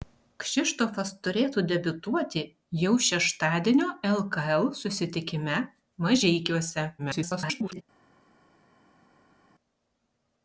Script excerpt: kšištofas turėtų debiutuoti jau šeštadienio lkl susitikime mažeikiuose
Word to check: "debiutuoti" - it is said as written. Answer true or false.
true